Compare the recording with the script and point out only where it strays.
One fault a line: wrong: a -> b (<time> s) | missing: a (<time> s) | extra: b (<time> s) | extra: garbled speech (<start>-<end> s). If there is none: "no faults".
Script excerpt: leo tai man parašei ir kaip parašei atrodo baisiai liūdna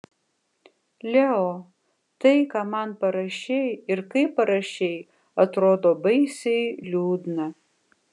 extra: ką (2.5 s)